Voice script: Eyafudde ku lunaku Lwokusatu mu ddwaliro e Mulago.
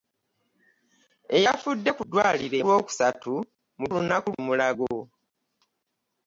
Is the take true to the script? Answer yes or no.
no